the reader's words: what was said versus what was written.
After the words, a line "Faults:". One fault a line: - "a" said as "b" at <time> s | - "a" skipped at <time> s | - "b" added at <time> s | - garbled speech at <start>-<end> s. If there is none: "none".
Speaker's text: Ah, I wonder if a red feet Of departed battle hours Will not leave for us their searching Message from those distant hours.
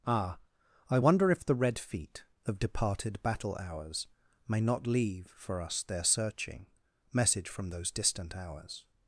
Ah, I wonder if the red feet Of departed battle hours May not leave for us their searching Message from those distant hours.
Faults:
- "a" said as "the" at 1.4 s
- "Will" said as "May" at 4.5 s